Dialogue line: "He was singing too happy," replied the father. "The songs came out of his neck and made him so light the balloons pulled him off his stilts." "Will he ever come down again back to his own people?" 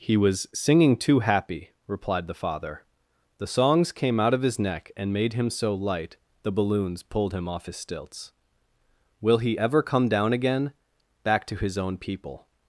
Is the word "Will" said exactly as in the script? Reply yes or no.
yes